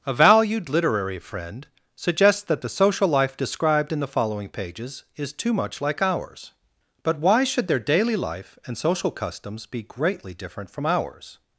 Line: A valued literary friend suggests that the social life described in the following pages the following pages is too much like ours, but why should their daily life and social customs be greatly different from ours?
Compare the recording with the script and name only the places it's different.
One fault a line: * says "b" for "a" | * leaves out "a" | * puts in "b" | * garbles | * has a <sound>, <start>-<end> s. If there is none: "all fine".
* leaves out "the following pages"